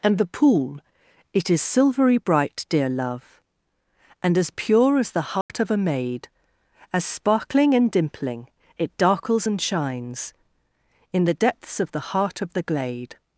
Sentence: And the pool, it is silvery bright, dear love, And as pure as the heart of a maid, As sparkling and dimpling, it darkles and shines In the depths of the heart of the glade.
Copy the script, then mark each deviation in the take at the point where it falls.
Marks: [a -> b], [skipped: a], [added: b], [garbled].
And the pool, it is silvery bright, dear love, And as pure as the heart of a maid, As sparkling and dimpling, it darkles and shines In the depths of the heart of the glade.